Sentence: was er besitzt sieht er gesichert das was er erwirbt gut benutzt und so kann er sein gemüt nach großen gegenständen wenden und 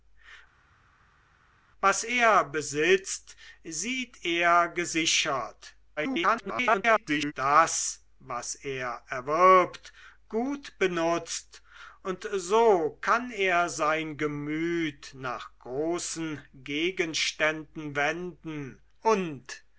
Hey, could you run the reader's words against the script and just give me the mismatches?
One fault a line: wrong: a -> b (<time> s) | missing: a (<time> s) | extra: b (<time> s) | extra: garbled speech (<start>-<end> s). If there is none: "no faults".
extra: garbled speech (6.0-7.3 s)